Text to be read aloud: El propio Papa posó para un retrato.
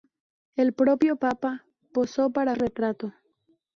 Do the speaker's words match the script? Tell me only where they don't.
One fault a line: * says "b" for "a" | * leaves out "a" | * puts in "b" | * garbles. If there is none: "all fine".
* leaves out "un"